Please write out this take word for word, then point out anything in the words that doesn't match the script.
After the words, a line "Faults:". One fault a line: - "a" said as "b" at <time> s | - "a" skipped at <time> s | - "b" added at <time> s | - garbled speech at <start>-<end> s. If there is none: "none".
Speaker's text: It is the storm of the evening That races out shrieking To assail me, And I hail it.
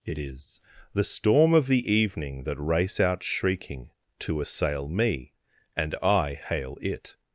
It is the storm of the evening That race out shrieking To assail me, And I hail it.
Faults:
- "races" said as "race" at 2.6 s